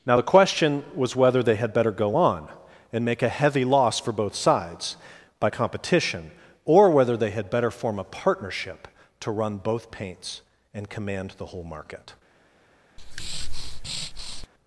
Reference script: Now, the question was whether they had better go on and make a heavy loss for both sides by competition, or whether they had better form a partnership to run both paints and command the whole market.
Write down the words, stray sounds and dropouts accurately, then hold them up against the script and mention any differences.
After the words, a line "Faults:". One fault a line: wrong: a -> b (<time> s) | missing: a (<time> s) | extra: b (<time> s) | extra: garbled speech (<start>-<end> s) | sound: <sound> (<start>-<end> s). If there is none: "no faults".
Now, the question was whether they had better go on and make a heavy loss for both sides by competition, or whether they had better form a partnership to run both paints and command the whole market.
Faults:
sound: breath (13.0-14.5 s)